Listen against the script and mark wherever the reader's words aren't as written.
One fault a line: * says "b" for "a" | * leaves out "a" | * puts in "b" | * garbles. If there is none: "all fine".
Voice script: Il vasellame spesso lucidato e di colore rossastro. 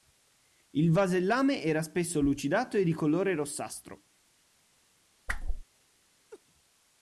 * puts in "era"